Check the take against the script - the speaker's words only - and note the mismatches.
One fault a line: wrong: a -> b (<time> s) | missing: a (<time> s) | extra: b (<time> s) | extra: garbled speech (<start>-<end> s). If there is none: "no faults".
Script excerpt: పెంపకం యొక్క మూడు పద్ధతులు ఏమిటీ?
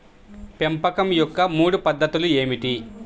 no faults